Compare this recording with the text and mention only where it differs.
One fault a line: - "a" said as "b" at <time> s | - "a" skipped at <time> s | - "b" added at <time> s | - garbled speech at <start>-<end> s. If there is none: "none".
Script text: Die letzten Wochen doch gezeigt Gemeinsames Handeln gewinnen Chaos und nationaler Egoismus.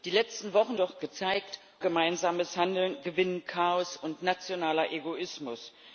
none